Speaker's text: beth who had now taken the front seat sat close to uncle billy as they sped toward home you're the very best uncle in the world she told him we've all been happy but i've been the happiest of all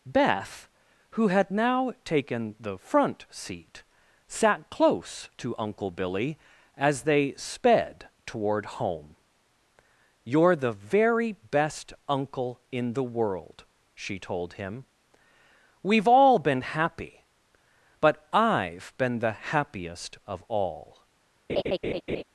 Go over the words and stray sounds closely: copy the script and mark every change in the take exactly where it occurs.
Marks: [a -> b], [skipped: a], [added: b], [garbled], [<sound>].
beth who had now taken the front seat sat close to uncle billy as they sped toward home you're the very best uncle in the world she told him we've all been happy but i've been the happiest of all [laugh]